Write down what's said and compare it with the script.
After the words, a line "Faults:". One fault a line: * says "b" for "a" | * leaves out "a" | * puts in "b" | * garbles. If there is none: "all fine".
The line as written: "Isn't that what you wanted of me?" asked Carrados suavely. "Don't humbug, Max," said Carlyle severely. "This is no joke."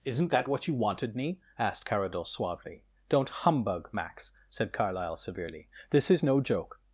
"Isn't that what you wanted me?" asked Carrados suavely. "Don't humbug, Max," said Carlyle severely. "This is no joke."
Faults:
* leaves out "of"